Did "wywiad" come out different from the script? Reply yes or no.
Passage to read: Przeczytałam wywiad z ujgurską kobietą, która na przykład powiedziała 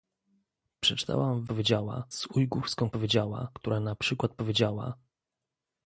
yes